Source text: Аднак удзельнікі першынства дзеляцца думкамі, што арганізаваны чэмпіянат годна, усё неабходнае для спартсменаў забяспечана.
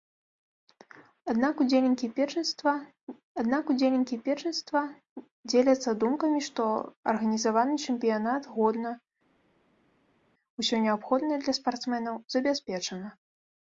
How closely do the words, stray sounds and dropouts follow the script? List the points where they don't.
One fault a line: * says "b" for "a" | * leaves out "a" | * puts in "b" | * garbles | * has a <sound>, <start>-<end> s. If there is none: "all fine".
* puts in "аднак удзельнікі першынства"